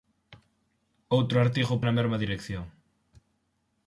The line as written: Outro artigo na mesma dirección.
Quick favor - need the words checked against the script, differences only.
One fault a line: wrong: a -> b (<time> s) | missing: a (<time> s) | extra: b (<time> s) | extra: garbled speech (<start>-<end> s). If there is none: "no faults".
no faults